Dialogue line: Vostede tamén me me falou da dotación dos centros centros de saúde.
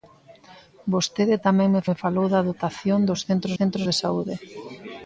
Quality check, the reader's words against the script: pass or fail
pass